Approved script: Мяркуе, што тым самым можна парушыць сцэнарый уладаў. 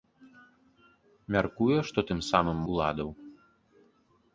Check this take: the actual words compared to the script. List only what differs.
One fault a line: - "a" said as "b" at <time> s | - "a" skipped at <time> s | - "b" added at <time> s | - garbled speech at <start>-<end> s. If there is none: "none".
- "можна парушыць сцэнарый" skipped at 2.6 s